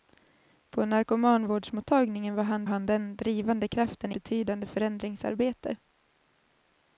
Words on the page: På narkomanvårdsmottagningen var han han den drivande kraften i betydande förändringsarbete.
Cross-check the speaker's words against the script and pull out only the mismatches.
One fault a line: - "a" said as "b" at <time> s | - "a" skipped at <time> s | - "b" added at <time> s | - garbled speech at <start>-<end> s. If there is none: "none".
none